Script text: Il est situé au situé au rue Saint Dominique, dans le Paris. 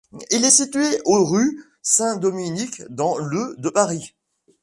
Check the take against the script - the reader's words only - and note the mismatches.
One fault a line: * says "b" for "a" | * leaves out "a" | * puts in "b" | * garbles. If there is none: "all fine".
* leaves out "situé au"
* puts in "de"